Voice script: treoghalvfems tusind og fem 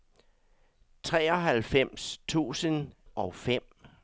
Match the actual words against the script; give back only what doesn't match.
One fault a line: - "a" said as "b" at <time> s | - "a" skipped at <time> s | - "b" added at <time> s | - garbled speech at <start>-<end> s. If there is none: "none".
none